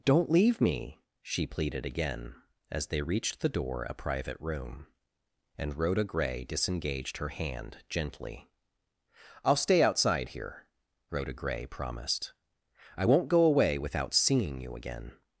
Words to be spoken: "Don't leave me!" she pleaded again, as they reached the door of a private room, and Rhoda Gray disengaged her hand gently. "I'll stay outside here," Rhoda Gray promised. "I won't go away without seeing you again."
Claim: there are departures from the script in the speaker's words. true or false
true